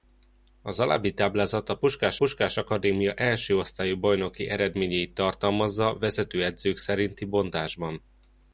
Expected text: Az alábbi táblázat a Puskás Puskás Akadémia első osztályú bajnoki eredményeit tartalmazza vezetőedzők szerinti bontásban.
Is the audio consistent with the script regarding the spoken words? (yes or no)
yes